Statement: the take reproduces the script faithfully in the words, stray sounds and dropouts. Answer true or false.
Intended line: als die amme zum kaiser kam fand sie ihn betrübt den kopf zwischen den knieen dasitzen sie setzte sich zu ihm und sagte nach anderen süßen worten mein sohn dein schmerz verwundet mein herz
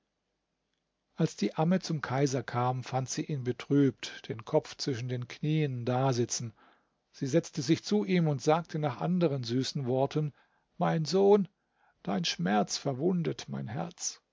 true